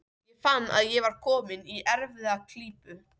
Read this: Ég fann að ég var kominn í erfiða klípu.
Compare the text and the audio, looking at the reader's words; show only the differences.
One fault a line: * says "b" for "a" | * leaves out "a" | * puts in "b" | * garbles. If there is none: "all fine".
all fine